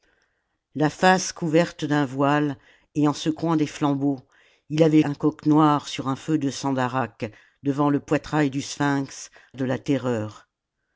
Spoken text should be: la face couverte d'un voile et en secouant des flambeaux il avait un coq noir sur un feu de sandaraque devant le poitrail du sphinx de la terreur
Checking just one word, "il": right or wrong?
right